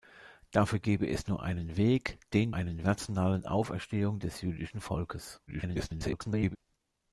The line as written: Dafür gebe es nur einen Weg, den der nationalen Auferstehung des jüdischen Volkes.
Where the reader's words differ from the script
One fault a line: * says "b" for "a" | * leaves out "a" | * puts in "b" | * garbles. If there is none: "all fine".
* says "einen" for "der"
* garbles